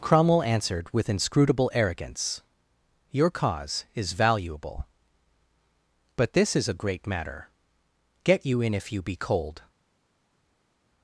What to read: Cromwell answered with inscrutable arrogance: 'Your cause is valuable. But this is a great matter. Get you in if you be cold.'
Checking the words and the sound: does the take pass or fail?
pass